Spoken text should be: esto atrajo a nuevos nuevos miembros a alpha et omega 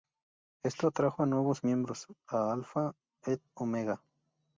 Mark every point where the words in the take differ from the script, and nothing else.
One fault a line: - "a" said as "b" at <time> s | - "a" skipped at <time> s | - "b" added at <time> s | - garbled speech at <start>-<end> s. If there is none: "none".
- "nuevos" skipped at 1.6 s